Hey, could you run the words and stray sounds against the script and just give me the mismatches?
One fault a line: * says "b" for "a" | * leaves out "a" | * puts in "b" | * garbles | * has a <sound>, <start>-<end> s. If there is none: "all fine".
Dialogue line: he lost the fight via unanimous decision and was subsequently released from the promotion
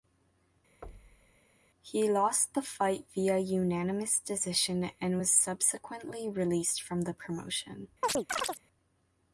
* has a thud, 0.8-1.4 s
* has a chirp, 8.0-8.6 s